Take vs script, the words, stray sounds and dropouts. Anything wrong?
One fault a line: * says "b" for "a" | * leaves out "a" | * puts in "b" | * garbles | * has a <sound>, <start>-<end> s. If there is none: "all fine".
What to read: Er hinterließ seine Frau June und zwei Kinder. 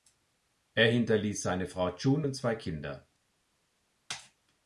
all fine